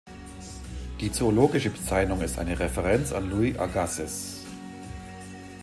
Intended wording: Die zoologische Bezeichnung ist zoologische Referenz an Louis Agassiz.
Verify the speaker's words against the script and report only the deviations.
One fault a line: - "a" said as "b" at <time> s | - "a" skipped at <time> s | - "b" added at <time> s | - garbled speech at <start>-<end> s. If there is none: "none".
- "zoologische" said as "eine" at 2.4 s